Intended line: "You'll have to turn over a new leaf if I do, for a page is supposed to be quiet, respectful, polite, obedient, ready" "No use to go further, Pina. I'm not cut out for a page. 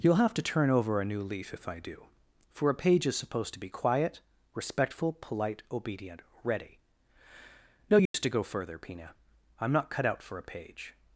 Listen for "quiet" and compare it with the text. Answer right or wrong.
right